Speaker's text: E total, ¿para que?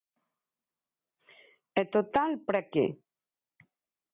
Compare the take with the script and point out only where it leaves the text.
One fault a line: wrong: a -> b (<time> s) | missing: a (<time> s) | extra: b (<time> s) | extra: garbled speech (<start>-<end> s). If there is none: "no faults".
no faults